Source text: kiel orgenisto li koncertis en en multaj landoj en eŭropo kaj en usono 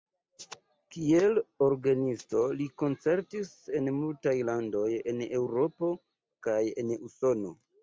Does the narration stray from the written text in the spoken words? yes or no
yes